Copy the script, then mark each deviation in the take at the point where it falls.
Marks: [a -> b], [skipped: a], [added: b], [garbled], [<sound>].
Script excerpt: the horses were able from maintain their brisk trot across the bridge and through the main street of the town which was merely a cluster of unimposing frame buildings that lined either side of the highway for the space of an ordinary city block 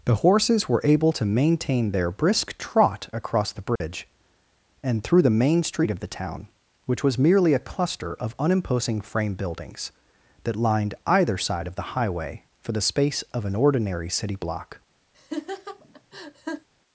the horses were able [from -> to] maintain their brisk trot across the bridge [dropout] and through the main street of the town which was merely a cluster of unimposing frame buildings that lined either side of the highway for the space of an ordinary city block [laugh]